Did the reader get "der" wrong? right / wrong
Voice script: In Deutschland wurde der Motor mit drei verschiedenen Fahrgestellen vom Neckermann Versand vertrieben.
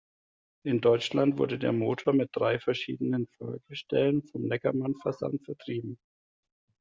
right